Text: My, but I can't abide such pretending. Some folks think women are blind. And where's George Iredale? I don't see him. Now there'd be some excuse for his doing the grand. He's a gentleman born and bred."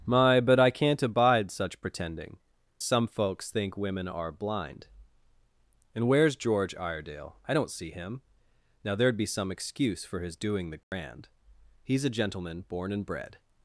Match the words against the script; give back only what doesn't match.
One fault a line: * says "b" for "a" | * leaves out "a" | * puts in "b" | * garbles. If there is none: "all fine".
all fine